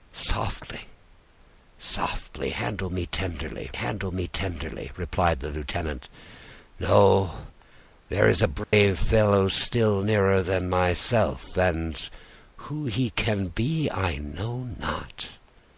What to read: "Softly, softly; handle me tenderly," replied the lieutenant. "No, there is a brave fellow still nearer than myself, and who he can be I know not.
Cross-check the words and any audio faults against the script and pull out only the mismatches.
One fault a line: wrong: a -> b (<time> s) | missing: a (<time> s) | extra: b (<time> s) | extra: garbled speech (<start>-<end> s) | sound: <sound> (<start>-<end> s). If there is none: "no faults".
extra: handle me tenderly (3.7 s)
sound: dropout (8.6-8.7 s)